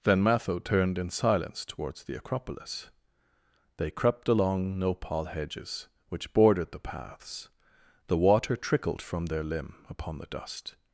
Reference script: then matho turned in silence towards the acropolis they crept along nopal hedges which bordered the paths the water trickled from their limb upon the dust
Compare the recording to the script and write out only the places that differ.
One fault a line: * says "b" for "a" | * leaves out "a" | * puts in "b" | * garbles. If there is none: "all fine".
all fine